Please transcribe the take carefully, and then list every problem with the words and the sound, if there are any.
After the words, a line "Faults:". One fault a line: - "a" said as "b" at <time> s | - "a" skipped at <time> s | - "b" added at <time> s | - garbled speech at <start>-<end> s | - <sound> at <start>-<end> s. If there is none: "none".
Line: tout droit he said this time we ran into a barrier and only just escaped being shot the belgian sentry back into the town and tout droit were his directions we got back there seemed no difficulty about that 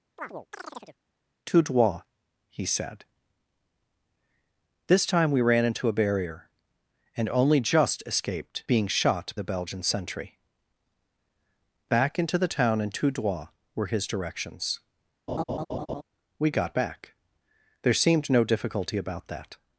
tout droit he said this time we ran into a barrier and only just escaped being shot the belgian sentry back into the town and tout droit were his directions we got back there seemed no difficulty about that
Faults:
- chirp at 0.2-1.0 s
- laugh at 15.3-16.0 s